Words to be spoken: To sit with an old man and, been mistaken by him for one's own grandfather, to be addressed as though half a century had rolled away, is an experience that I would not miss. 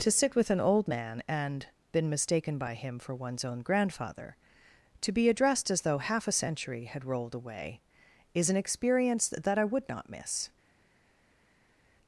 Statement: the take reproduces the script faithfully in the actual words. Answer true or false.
true